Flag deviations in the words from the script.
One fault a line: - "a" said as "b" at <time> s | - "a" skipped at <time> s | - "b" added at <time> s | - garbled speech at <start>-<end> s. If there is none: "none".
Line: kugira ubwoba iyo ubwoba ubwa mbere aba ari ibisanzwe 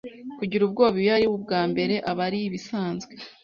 - "ubwoba" said as "ari" at 1.2 s